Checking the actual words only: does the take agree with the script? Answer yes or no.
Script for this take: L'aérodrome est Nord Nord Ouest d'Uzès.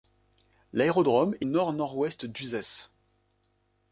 yes